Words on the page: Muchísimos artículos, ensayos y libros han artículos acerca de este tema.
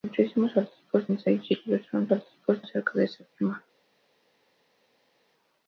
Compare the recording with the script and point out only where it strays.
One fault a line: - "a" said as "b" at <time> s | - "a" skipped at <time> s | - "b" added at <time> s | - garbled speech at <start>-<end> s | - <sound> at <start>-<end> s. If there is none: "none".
none